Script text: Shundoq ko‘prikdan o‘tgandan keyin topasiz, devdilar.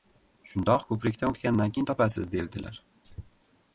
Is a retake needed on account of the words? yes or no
no